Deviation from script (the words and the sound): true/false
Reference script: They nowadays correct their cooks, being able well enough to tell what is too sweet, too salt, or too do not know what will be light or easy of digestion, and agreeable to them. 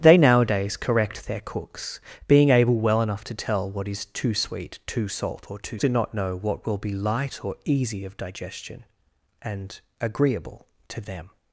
false